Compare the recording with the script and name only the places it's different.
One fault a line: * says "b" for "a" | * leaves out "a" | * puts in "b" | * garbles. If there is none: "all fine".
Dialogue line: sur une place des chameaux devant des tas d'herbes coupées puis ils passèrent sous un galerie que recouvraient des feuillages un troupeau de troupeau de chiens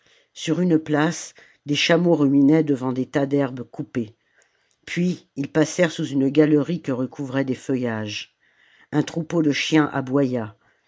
* puts in "ruminaient"
* says "une" for "un"
* leaves out "troupeau de"